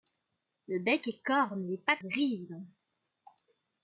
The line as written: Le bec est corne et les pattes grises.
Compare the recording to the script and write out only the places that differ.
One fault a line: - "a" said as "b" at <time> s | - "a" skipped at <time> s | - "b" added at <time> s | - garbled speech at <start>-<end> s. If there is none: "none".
none